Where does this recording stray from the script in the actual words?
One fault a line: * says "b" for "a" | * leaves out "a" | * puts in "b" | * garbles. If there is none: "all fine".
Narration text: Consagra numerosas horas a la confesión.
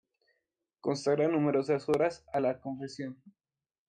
all fine